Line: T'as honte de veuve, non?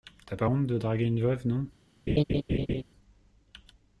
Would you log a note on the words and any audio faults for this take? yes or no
yes